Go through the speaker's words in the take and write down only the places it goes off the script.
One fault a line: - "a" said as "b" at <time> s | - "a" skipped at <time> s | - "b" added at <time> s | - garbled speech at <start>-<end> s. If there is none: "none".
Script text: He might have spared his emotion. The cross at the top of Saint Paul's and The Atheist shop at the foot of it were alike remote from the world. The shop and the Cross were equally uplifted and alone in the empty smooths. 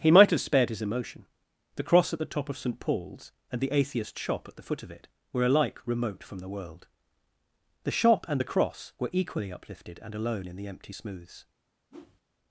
none